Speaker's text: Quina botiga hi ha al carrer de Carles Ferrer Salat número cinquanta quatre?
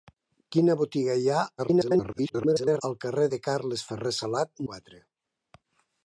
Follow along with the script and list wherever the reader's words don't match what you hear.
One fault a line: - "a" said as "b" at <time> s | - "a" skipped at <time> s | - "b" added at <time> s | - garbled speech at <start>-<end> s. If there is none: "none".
- garbled speech at 1.6-2.8 s
- "número cinquanta" skipped at 4.7 s